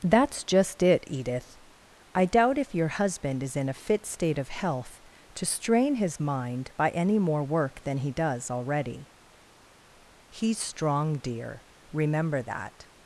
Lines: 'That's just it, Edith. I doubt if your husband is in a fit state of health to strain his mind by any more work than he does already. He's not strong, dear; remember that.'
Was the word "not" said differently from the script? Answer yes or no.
yes